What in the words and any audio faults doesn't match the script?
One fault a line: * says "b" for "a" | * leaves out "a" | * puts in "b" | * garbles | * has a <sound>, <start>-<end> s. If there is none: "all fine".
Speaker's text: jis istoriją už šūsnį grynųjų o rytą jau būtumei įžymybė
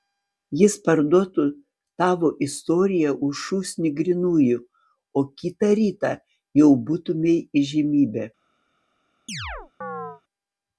* puts in "parduotų tavo"
* puts in "kitą"
* has a chirp, 9.3-10.2 s